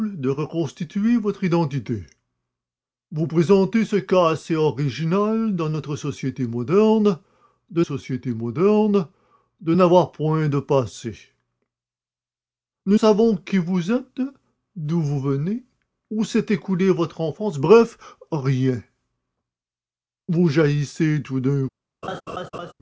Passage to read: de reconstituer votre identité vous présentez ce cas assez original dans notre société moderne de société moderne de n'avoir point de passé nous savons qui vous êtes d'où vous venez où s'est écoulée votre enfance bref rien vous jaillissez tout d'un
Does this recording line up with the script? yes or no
yes